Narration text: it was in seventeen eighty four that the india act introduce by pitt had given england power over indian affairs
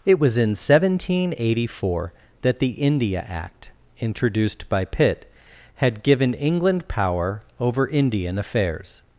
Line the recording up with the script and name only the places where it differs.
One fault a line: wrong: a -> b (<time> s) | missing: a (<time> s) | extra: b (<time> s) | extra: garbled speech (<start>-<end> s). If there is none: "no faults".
wrong: introduce -> introduced (4.0 s)